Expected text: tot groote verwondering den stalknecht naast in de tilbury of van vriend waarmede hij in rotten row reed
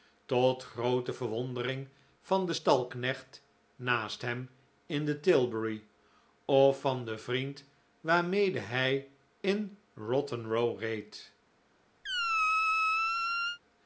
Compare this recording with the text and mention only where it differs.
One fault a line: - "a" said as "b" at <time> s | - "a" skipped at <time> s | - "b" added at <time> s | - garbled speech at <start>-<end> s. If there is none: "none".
- "van" added at 2.2 s
- "hem" added at 4.2 s
- "den" added at 7.0 s